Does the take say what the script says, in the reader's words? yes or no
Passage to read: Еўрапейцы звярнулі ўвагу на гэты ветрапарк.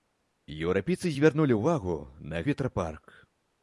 no